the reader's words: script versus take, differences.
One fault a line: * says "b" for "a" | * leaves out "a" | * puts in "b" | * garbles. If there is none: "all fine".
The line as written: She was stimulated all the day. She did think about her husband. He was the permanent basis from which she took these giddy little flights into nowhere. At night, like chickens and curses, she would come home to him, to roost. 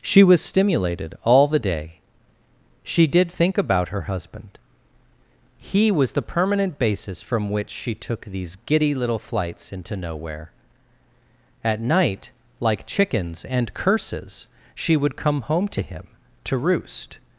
all fine